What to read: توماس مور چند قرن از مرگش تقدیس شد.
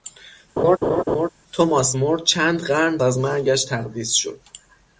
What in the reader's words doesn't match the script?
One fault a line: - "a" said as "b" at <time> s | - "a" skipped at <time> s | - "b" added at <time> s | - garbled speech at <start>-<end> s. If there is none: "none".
none